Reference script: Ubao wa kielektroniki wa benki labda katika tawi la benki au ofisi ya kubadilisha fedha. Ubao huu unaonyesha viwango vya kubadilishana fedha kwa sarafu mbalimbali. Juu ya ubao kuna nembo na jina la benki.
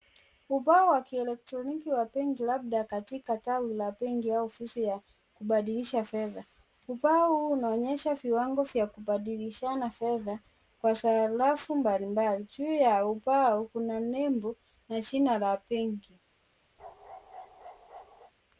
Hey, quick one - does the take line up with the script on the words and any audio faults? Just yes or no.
no